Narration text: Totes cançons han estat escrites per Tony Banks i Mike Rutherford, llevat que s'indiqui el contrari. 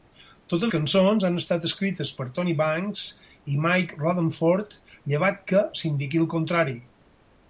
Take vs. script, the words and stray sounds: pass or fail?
pass